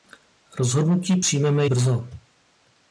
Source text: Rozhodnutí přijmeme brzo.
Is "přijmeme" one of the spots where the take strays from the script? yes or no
no